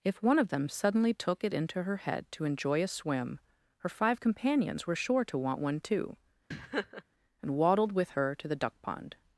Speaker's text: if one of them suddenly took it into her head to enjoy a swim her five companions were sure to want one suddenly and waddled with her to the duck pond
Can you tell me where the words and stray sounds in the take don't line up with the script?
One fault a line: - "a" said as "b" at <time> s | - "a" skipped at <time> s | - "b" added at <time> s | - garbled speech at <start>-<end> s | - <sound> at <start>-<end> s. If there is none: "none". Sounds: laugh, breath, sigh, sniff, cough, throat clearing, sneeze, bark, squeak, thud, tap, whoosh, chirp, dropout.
- "suddenly" said as "too" at 5.8 s
- laugh at 6.5-7.0 s